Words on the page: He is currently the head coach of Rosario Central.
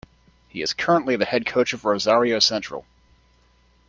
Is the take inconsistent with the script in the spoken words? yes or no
no